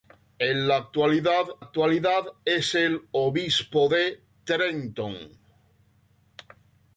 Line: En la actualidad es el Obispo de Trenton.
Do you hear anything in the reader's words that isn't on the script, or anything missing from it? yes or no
yes